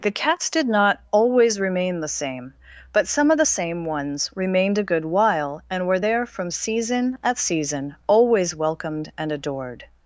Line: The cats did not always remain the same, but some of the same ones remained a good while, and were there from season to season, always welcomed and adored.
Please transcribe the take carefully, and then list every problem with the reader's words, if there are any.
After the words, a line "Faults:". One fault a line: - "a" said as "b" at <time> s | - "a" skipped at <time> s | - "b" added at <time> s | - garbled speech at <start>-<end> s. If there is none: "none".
The cats did not always remain the same, but some of the same ones remained a good while, and were there from season at season, always welcomed and adored.
Faults:
- "to" said as "at" at 7.2 s